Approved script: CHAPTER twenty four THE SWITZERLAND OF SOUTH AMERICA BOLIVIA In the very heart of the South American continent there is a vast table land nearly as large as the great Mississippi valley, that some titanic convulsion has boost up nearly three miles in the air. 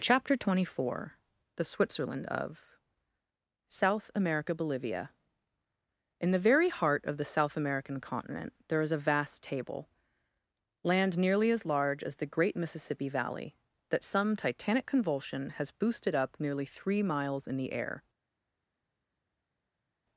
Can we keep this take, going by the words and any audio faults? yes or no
no